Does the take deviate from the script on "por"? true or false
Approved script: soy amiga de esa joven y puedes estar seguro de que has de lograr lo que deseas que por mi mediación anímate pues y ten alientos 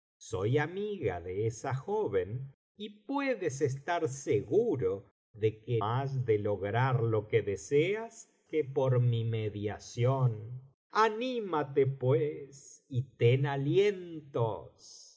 false